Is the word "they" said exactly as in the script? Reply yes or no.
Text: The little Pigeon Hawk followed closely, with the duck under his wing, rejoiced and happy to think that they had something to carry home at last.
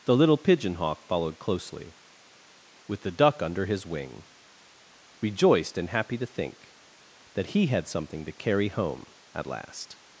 no